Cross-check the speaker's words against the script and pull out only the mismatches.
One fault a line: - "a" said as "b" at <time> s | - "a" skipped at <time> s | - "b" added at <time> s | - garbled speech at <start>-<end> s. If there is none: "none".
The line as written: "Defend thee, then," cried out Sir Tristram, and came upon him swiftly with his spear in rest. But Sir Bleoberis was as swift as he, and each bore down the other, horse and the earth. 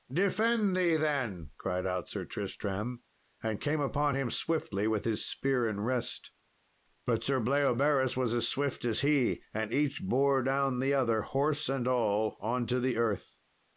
- "all on to" added at 11.9 s